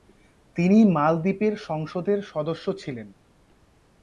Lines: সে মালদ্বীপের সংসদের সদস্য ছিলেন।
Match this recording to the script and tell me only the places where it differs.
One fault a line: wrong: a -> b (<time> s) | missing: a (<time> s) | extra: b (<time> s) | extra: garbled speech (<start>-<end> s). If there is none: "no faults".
wrong: সে -> তিনি (0.6 s)